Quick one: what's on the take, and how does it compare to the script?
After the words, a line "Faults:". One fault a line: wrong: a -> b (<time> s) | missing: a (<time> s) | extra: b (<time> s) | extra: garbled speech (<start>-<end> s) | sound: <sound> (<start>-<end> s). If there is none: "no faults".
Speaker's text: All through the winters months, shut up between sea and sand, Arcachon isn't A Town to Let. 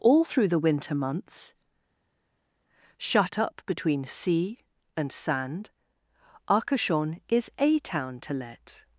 All through the winter months, shut up between sea and sand, Arcachon is A Town to Let.
Faults:
wrong: winters -> winter (0.6 s)
wrong: isn't -> is (7.3 s)